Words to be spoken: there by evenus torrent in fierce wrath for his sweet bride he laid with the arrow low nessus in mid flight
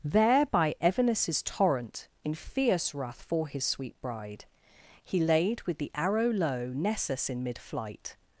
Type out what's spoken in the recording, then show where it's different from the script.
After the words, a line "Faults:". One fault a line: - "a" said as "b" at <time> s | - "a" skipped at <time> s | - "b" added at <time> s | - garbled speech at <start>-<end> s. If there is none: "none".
there by evenus torrent in fierce wrath for his sweet bride he laid with the arrow low nessus in mid flight
Faults:
none